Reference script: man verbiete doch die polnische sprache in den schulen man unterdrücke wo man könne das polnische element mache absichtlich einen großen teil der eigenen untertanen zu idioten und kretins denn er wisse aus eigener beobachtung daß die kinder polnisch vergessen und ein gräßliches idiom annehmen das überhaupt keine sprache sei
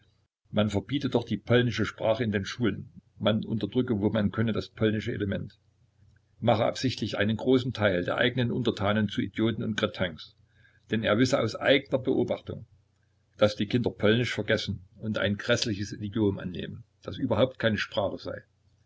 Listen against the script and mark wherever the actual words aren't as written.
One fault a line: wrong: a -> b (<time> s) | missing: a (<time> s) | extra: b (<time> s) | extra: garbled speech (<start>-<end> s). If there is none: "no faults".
no faults